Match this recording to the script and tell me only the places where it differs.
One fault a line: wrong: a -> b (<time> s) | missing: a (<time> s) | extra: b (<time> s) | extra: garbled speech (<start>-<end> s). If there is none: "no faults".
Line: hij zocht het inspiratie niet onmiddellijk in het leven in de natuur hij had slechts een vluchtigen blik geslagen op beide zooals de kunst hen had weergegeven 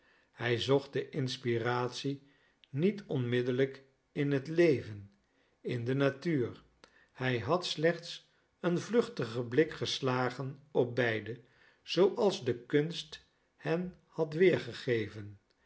wrong: het -> de (0.9 s)